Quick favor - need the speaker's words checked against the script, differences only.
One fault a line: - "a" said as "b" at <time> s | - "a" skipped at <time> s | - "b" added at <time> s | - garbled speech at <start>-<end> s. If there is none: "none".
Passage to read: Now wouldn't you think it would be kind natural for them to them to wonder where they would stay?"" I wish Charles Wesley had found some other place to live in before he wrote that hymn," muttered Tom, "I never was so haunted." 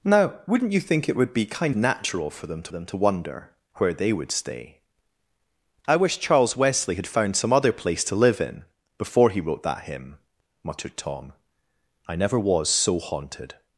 none